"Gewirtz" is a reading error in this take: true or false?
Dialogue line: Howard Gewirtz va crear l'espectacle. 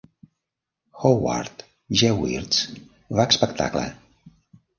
false